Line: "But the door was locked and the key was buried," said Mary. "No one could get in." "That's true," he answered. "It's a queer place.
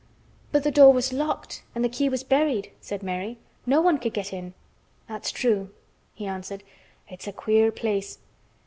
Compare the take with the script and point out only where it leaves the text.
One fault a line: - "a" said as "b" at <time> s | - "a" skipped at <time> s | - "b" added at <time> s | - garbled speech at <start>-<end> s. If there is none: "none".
none